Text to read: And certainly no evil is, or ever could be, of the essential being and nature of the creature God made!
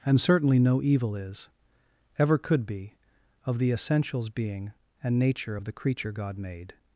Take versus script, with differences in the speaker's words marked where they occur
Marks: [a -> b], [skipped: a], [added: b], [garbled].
And certainly no evil is, [skipped: or] ever could be, of the [essential -> essentials] being and nature of the creature God made!